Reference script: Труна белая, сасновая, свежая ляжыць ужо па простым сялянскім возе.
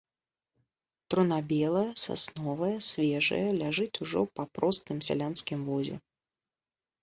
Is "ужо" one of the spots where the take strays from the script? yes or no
no